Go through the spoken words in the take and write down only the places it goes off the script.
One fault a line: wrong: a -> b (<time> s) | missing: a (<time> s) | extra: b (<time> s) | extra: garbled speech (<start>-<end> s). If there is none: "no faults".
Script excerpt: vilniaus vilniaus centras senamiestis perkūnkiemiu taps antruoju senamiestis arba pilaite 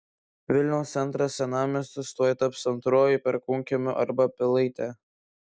missing: vilniaus (0.9 s)
wrong: perkūnkiemiu -> tuoj (2.2 s)
wrong: senamiestis -> perkūnkiemiu (3.3 s)